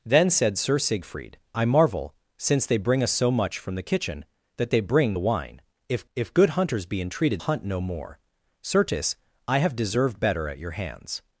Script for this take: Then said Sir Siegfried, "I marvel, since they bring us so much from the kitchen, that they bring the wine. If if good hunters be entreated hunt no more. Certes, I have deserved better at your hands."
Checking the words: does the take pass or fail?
pass